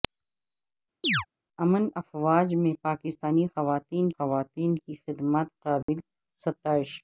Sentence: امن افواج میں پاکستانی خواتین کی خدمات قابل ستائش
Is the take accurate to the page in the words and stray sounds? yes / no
no